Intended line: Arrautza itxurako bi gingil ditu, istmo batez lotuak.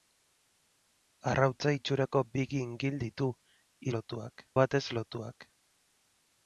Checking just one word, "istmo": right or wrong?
wrong